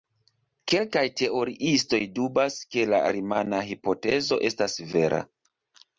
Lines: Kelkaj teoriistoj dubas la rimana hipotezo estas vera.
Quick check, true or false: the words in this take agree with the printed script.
false